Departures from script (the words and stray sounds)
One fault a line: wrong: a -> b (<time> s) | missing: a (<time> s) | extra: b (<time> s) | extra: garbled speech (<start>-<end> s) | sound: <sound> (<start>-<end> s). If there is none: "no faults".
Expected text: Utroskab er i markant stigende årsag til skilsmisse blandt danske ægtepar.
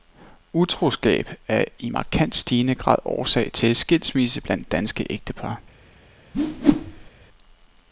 extra: grad (2.7 s)
sound: whoosh (6.3-7.1 s)